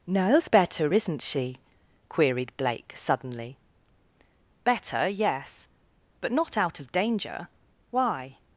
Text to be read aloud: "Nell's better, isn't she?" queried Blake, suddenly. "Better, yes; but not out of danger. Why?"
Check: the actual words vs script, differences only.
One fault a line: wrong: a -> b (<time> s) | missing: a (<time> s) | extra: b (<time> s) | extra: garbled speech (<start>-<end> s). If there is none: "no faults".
no faults